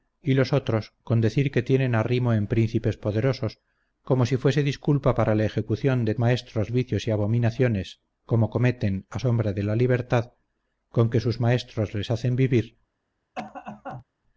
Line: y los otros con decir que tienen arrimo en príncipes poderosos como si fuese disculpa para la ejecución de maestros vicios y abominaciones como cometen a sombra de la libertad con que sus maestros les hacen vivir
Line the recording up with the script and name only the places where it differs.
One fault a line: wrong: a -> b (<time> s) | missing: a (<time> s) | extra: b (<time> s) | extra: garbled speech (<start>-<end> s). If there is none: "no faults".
no faults